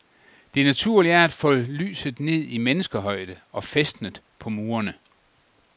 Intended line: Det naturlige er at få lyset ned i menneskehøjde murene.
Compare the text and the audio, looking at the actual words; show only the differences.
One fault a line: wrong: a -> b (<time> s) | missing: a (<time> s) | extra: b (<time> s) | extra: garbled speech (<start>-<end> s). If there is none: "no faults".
extra: og fæstnet på (3.5 s)